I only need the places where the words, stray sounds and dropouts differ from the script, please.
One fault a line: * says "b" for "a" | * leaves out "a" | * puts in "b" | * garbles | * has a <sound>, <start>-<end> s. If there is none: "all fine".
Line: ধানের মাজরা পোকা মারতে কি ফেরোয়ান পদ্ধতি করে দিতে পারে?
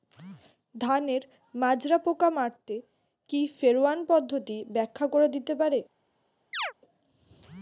* puts in "ব্যাখ্যা"
* has a chirp, 6.5-6.7 s